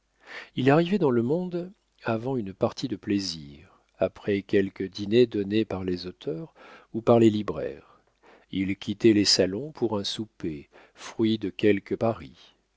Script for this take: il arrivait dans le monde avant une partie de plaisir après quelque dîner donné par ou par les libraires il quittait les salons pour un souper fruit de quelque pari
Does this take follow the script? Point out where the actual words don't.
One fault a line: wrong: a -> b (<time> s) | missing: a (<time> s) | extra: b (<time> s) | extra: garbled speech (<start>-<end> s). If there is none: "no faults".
extra: les auteurs (5.8 s)